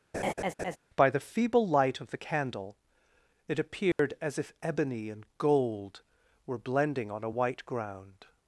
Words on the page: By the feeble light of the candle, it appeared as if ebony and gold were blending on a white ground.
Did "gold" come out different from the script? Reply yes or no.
no